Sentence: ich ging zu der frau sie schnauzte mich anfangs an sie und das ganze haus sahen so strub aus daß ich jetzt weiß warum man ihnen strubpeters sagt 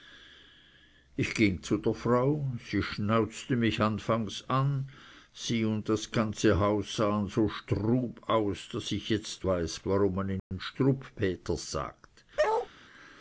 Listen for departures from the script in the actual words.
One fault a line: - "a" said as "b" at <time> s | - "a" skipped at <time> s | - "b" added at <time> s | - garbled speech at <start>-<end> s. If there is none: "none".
none